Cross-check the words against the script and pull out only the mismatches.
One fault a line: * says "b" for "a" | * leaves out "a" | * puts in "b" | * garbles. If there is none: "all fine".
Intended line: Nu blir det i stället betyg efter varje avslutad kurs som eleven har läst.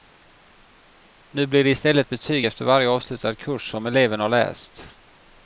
all fine